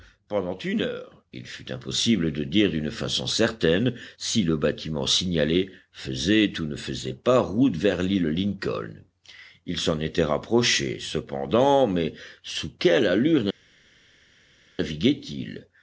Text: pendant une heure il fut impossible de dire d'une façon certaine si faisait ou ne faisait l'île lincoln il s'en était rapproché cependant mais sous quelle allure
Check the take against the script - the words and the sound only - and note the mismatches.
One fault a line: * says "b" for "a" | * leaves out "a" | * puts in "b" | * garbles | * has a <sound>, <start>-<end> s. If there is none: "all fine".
* puts in "le bâtiment signalé"
* puts in "pas route vers"